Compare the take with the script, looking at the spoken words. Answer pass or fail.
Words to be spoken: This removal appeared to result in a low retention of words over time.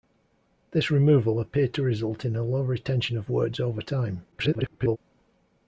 fail